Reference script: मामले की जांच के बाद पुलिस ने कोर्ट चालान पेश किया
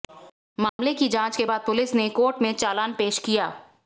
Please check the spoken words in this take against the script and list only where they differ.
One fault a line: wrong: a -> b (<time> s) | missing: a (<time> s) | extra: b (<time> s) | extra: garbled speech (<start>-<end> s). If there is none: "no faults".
extra: में (2.4 s)